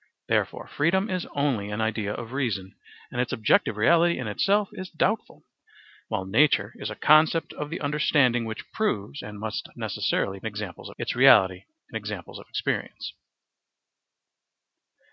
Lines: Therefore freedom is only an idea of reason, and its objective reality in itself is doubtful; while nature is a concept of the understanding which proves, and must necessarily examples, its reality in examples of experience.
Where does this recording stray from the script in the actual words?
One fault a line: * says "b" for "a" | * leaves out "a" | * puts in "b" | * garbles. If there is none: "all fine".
all fine